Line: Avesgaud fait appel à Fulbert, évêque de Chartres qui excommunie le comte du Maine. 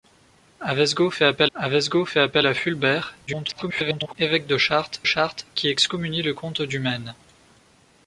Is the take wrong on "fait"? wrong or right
right